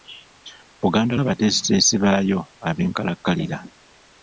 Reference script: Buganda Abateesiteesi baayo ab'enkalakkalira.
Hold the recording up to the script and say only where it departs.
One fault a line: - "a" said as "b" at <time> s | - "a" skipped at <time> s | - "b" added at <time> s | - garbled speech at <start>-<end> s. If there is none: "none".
none